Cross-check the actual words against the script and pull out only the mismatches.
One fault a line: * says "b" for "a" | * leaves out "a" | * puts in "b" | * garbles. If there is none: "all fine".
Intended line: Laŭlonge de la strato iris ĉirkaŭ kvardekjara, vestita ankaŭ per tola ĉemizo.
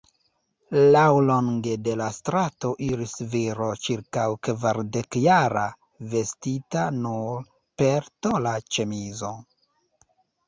* puts in "viro"
* says "nur" for "ankaŭ"